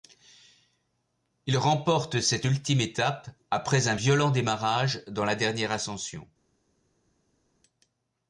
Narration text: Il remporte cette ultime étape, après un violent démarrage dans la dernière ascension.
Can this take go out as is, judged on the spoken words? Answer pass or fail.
pass